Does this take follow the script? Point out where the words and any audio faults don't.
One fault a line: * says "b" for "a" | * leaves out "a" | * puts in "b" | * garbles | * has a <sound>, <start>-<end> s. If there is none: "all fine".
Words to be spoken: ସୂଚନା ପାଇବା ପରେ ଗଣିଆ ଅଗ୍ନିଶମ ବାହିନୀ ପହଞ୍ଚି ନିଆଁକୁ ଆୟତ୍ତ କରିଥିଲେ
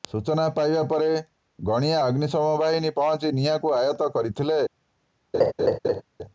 * has a laugh, 5.3-6.0 s